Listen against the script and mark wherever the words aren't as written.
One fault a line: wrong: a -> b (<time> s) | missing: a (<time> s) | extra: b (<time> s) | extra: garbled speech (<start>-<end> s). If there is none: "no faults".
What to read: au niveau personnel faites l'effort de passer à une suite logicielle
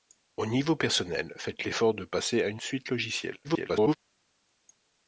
extra: garbled speech (3.4-4.0 s)